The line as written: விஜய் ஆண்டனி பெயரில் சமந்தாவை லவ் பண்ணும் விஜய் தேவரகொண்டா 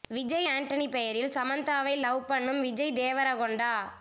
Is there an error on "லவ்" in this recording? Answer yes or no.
no